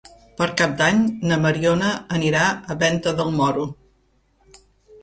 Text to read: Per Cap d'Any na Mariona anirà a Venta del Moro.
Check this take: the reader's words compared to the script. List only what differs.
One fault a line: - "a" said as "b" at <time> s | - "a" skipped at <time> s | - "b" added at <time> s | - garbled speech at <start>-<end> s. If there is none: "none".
none